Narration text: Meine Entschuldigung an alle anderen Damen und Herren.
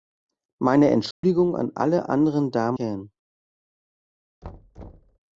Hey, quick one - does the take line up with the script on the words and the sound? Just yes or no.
no